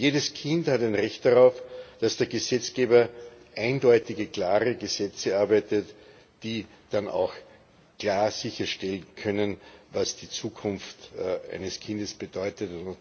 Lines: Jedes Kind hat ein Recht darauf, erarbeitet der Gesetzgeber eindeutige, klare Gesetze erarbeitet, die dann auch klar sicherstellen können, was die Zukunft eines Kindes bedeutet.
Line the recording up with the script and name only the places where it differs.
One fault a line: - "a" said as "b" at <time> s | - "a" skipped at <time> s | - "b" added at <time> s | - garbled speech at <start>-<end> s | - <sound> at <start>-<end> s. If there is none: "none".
- "erarbeitet" said as "dass" at 2.0 s